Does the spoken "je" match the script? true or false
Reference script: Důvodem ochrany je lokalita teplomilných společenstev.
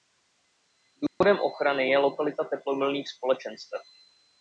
true